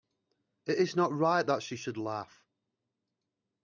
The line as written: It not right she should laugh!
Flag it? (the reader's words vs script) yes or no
yes